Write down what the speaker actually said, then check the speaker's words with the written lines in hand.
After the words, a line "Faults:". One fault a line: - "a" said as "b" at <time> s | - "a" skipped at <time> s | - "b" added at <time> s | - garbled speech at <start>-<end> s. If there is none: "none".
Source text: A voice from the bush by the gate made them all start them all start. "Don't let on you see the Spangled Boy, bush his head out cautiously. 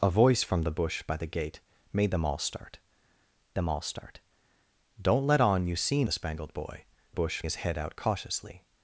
A voice from the bush by the gate made them all start them all start. "Don't let on you see the Spangled Boy, bush his head out cautiously.
Faults:
none